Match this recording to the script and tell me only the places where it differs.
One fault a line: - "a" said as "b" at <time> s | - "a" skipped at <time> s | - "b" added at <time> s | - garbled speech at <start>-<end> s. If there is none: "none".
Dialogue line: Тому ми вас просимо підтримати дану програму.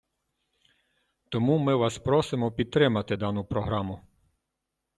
none